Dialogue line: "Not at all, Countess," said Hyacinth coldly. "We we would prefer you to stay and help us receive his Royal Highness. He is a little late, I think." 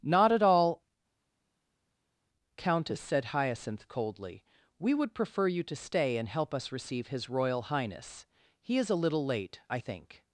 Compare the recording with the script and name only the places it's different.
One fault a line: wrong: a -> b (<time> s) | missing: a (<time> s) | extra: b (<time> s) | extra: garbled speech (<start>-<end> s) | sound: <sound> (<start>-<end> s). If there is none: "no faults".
missing: we (4.9 s)